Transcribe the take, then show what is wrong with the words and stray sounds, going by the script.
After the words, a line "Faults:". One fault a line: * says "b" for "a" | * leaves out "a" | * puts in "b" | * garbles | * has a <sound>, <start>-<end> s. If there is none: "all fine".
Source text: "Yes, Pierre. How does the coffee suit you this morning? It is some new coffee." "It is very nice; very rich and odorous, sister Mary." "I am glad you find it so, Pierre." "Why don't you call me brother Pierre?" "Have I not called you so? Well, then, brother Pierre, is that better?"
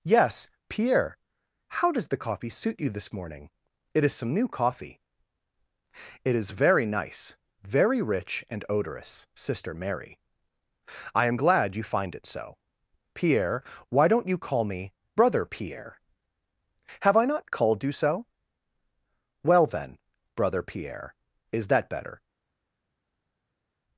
"Yes, Pierre. How does the coffee suit you this morning? It is some new coffee." "It is very nice; very rich and odorous, sister Mary." "I am glad you find it so, Pierre." "Why don't you call me brother Pierre?" "Have I not called you so? Well, then, brother Pierre, is that better?"
Faults:
all fine